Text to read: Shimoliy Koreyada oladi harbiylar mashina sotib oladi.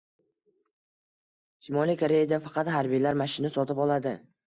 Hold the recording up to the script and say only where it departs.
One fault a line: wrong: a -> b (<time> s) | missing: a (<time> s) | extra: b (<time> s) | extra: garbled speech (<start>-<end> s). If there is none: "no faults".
wrong: oladi -> faqat (2.5 s)